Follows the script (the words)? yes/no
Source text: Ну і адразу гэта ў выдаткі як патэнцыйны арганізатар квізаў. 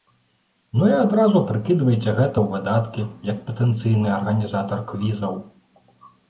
no